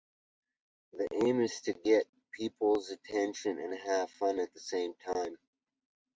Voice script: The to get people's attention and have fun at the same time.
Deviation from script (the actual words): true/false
true